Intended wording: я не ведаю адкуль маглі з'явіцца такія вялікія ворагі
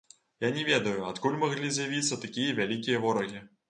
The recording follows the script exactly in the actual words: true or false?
true